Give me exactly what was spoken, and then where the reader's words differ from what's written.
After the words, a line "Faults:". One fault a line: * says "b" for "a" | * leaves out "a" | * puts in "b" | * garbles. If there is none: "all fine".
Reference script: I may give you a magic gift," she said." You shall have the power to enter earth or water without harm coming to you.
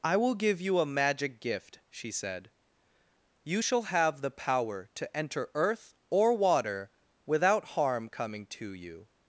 I will give you a magic gift," she said." You shall have the power to enter earth or water without harm coming to you.
Faults:
* says "will" for "may"